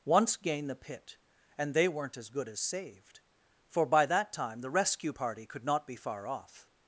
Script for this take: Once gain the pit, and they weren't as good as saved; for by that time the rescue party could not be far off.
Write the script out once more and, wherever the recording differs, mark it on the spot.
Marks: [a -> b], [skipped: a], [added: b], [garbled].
Once gain the pit, and they weren't as good as saved; for by that time the rescue party could not be far off.